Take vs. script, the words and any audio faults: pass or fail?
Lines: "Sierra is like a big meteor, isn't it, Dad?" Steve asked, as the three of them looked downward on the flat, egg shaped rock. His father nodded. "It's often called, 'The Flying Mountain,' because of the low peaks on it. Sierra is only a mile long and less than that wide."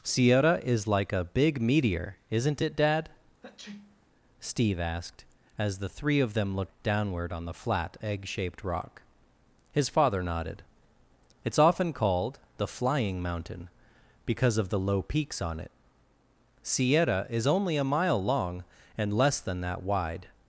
fail